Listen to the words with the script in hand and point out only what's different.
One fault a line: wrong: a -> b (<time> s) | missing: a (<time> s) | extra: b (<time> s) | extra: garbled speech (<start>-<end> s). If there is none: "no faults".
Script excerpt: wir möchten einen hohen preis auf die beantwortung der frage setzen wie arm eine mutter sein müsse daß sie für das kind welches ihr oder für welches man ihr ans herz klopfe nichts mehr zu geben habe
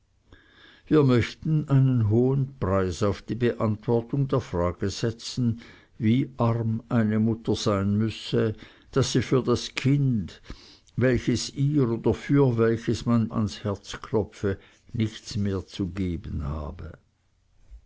missing: ihr (13.3 s)